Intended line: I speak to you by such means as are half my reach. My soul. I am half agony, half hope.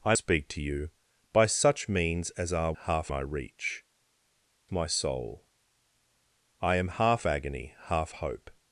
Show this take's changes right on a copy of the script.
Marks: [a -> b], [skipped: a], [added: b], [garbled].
I speak to you by such means as are half my reach. My soul. I am half agony, half hope.